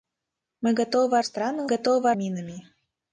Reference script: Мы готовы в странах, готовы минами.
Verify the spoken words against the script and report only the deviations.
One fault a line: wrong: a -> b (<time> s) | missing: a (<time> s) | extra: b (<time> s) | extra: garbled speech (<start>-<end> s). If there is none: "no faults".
no faults